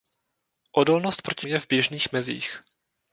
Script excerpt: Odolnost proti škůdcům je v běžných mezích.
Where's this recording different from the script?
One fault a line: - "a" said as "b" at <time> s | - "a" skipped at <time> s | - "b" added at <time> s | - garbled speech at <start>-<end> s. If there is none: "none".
- "škůdcům" skipped at 1.5 s